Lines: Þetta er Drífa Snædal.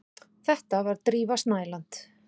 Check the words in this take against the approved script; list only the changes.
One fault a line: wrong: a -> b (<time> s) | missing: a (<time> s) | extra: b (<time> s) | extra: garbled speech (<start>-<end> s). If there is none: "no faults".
wrong: er -> var (0.9 s)